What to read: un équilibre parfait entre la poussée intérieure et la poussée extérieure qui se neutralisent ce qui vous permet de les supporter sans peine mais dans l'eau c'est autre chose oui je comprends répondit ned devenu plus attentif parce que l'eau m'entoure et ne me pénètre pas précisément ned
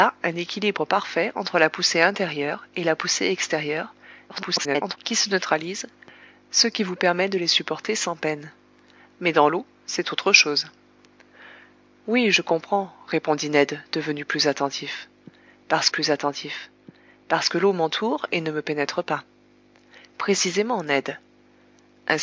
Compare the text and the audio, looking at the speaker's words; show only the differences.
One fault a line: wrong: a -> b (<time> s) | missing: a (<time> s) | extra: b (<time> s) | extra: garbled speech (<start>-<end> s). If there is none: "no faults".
extra: garbled speech (4.3-5.0 s)
extra: plus attentif parce (15.9 s)